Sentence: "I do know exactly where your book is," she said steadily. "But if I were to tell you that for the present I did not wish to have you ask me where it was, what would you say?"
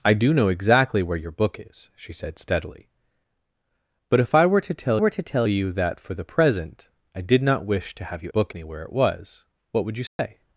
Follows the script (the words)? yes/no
no